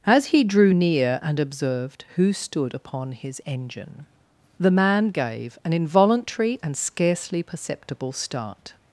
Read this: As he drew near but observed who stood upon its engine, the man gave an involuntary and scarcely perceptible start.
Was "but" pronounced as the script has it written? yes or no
no